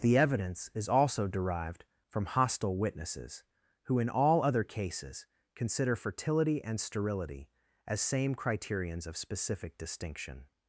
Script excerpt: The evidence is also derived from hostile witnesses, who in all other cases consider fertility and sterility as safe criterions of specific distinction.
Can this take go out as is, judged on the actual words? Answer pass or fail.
fail